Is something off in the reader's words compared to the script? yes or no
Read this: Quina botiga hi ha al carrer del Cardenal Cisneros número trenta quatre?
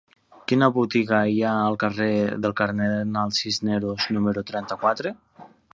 no